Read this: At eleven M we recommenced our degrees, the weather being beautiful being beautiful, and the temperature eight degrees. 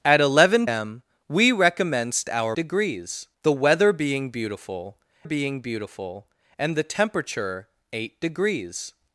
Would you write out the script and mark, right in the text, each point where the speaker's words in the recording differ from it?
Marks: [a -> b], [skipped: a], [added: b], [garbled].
At eleven M we recommenced our degrees, the weather being beautiful being beautiful, and the temperature eight degrees.